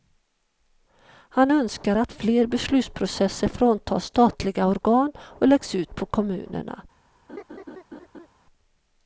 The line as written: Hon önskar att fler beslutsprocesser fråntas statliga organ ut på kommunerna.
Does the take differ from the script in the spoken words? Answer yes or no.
yes